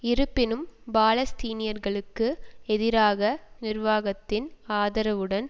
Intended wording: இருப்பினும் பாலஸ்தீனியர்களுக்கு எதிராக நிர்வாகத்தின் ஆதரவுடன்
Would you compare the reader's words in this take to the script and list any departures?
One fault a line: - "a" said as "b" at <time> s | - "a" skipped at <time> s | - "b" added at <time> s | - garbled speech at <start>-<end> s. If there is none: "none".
none